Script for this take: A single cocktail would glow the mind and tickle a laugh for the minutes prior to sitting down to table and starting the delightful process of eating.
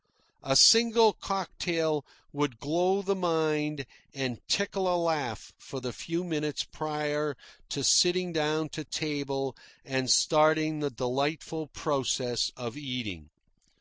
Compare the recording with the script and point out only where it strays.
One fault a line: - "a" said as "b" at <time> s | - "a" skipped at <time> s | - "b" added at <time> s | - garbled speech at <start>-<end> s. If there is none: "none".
- "few" added at 5.9 s